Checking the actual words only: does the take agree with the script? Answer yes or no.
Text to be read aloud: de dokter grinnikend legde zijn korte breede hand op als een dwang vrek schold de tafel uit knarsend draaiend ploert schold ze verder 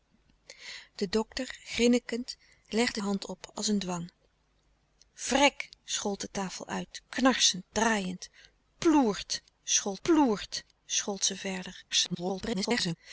no